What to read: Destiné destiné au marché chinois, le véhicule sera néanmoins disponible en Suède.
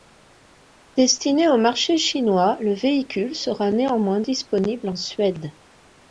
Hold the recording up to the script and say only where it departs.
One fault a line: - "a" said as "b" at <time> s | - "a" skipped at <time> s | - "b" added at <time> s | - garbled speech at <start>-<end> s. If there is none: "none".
- "destiné" skipped at 1.5 s